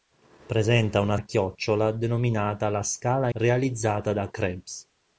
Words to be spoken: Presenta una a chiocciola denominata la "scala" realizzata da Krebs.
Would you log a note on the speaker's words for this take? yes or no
no